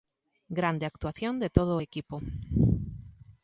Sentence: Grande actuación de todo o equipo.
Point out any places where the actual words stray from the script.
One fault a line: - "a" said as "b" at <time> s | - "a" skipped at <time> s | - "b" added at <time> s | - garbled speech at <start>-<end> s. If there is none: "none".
none